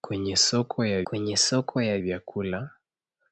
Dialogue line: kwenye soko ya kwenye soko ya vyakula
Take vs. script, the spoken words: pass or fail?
pass